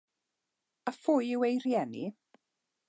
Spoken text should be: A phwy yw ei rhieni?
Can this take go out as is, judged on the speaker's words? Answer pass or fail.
pass